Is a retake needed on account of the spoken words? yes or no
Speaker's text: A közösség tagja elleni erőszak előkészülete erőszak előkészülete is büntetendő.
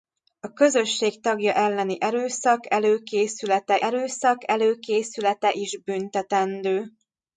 no